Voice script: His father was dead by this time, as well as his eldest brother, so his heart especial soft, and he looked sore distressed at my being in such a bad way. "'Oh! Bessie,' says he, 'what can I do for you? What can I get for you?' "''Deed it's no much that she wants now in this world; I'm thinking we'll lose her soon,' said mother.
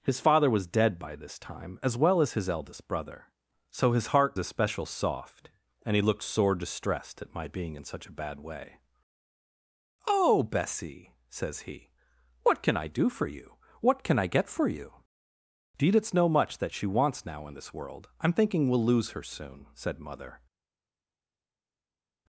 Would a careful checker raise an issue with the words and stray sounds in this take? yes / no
no